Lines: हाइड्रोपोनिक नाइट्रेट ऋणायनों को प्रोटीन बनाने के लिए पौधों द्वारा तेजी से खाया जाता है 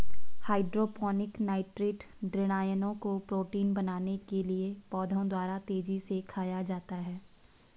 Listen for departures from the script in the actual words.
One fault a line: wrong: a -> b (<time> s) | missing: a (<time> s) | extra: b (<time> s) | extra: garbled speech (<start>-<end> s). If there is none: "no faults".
no faults